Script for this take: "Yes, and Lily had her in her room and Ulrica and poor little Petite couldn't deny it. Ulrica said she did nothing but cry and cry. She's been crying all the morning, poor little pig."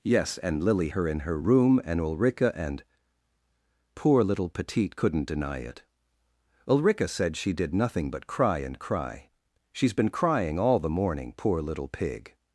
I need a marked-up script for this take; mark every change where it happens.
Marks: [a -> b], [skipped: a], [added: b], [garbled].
"Yes, and Lily [skipped: had] her in her room and Ulrica and poor little Petite couldn't deny it. Ulrica said she did nothing but cry and cry. She's been crying all the morning, poor little pig."